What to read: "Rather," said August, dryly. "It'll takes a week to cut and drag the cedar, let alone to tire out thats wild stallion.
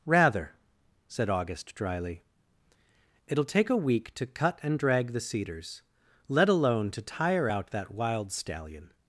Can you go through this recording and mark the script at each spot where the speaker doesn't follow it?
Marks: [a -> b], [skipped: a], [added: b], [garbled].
"Rather," said August, dryly. "It'll [takes -> take] a week to cut and drag the [cedar, -> cedars] let alone to tire out [thats -> that] wild stallion.